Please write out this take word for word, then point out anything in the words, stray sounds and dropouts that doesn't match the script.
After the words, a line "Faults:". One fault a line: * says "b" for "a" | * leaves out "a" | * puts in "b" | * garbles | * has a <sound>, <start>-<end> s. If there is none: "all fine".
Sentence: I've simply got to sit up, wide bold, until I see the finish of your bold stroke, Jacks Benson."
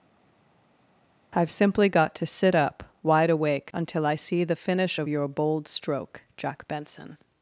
I've simply got to sit up, wide awake, until I see the finish of your bold stroke, Jack Benson."
Faults:
* says "awake" for "bold"
* says "Jack" for "Jacks"